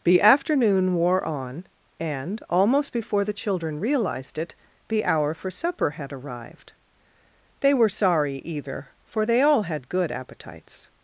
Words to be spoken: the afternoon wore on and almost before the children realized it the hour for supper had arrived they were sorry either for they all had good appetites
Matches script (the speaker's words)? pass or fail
pass